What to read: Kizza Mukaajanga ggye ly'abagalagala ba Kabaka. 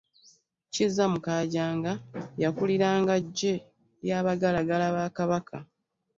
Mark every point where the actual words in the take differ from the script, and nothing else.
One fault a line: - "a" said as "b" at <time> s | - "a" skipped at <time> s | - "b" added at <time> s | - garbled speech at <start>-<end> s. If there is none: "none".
- "yakuliranga" added at 2.4 s